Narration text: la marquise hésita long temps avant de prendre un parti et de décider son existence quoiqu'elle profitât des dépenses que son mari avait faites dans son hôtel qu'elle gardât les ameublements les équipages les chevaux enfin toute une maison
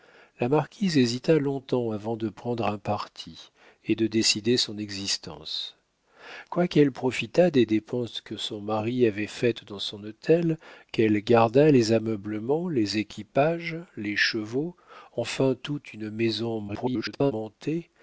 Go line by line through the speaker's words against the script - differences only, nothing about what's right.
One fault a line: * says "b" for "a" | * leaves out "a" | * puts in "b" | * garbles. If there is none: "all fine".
* garbles